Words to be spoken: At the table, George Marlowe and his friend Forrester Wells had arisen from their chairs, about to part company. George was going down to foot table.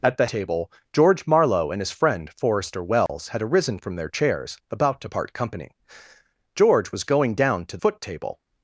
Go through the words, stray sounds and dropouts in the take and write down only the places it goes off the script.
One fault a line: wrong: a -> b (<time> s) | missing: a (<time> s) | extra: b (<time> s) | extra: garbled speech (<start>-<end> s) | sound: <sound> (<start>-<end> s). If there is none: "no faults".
sound: dropout (3.1-3.1 s)